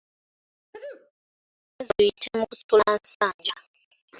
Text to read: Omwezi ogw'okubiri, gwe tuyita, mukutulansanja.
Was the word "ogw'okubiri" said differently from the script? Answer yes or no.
yes